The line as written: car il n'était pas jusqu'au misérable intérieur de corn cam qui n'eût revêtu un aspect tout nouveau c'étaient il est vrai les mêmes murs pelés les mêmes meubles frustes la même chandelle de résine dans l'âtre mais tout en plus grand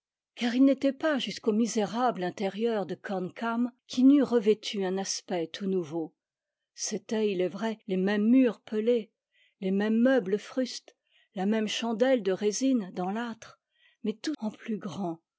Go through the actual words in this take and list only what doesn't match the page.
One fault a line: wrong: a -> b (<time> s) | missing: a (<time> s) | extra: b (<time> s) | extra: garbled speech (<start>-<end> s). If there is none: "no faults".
no faults